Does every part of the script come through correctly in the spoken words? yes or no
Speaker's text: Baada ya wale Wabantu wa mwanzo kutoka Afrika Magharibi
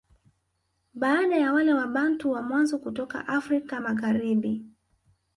yes